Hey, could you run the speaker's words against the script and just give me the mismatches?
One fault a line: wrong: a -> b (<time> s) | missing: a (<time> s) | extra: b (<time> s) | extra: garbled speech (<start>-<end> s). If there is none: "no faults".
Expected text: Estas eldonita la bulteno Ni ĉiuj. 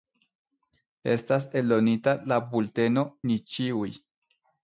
no faults